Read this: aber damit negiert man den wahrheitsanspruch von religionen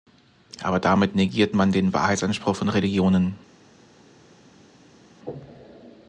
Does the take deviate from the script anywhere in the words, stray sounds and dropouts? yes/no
no